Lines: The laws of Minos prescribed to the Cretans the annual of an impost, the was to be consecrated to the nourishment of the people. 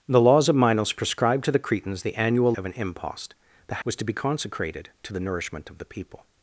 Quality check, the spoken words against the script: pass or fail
pass